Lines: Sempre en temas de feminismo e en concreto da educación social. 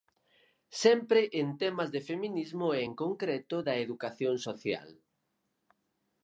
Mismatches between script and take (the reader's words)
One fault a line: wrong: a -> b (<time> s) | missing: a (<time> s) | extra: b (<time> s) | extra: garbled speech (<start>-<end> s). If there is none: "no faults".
no faults